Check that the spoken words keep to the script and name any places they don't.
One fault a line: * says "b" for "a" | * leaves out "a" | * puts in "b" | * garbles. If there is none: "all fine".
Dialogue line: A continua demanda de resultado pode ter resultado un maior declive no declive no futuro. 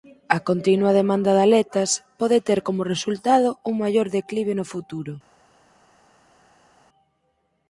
* says "aletas" for "resultado"
* puts in "como"
* leaves out "declive no"